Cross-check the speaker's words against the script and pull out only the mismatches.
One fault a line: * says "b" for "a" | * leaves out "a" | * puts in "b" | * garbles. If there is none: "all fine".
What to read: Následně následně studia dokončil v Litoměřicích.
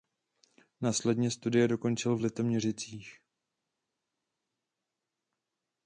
* leaves out "následně"